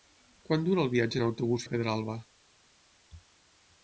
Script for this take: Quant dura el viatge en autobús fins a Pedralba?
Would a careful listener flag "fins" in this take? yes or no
yes